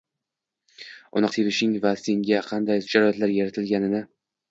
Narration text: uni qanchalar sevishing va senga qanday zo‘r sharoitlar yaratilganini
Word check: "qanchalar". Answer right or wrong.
wrong